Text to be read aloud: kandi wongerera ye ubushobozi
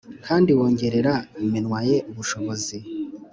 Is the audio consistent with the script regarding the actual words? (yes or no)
no